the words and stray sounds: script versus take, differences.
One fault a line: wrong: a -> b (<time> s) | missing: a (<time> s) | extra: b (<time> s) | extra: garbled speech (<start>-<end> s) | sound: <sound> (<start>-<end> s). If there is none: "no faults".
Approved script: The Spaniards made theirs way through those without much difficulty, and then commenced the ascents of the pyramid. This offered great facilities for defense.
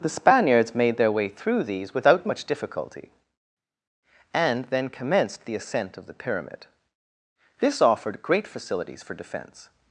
wrong: theirs -> their (1.0 s)
wrong: those -> these (1.6 s)
wrong: ascents -> ascent (5.6 s)